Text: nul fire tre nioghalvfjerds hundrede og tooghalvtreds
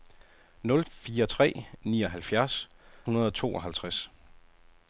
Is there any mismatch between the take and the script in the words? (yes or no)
no